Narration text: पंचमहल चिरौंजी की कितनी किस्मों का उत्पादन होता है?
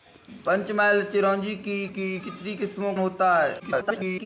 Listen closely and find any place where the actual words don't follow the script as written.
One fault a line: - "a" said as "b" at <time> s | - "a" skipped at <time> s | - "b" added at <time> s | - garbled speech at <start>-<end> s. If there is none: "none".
- "की" added at 1.8 s
- "का उत्पादन" skipped at 2.9 s
- garbled speech at 3.6-4.3 s